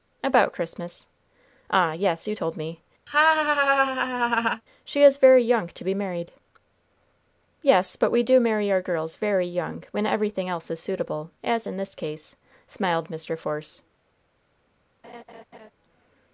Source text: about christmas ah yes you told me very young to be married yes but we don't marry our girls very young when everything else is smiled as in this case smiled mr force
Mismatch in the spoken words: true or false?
true